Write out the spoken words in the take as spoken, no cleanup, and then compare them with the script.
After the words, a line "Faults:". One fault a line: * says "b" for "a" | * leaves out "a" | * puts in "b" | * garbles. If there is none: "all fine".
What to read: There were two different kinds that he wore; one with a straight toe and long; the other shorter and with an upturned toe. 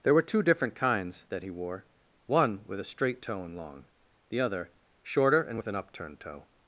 There were two different kinds that he wore; one with a straight toe and long; the other shorter and with an upturned toe.
Faults:
all fine